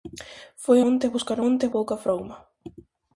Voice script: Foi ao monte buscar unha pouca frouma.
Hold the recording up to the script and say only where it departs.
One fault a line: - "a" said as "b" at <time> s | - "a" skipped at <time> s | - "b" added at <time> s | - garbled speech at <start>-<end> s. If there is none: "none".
- "ao" skipped at 0.8 s
- "unha" said as "monte" at 1.4 s